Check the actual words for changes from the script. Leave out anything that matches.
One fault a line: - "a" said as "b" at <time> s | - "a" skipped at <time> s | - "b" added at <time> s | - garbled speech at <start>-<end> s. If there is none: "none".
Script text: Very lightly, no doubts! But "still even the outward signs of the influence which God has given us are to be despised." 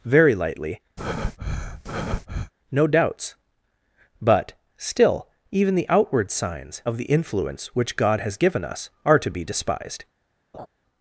none